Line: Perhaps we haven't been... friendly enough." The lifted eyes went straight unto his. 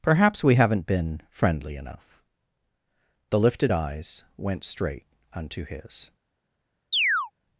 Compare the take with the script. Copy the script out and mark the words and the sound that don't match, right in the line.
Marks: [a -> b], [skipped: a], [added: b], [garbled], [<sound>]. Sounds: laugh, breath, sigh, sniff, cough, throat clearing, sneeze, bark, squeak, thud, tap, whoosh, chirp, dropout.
Perhaps we haven't been... friendly enough." The lifted eyes went straight unto his. [chirp]